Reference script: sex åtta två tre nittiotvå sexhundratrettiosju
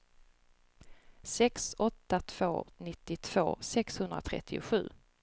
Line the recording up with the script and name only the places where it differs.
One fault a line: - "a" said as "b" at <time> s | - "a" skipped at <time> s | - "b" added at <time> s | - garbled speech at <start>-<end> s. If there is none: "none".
- "tre" skipped at 2.7 s